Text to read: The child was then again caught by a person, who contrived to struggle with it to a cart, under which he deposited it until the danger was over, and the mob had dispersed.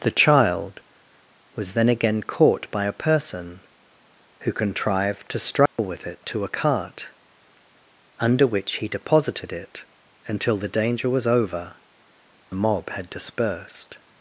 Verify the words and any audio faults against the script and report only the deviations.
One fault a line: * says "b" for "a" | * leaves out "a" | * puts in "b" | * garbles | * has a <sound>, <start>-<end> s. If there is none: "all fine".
* has a dropout, 5.7-5.8 s
* leaves out "and"